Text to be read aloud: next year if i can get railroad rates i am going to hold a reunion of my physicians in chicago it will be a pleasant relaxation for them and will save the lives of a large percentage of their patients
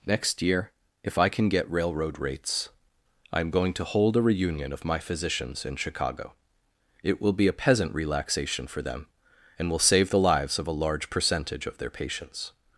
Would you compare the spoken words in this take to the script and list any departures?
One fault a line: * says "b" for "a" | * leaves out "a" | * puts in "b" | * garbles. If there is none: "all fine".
* says "peasant" for "pleasant"